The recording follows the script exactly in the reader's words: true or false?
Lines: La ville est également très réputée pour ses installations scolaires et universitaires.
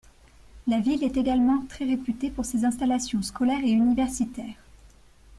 true